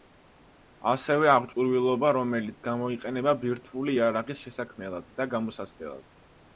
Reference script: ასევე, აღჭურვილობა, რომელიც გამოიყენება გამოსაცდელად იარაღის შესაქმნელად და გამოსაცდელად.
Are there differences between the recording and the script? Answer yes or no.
yes